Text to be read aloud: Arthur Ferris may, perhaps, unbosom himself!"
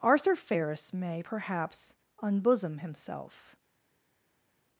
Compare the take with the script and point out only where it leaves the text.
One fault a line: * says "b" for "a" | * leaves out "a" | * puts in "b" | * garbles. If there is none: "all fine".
all fine